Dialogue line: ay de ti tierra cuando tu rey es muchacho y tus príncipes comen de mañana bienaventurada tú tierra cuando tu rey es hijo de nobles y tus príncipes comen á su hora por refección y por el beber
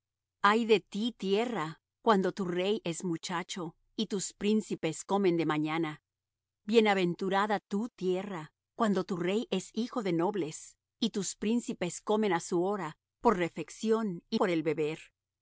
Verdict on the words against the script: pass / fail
pass